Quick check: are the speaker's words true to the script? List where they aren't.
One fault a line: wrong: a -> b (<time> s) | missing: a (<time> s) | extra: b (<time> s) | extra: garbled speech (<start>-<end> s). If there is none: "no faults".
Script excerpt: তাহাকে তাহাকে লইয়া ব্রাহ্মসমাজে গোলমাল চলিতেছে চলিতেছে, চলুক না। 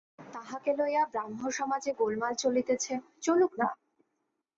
missing: তাহাকে (0.7 s)
missing: চলিতেছে (2.9 s)